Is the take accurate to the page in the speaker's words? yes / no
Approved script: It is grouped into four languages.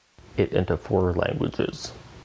no